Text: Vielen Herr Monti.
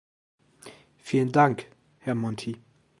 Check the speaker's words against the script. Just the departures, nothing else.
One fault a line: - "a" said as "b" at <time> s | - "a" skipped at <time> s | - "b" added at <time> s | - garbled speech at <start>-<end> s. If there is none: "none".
- "Dank" added at 1.3 s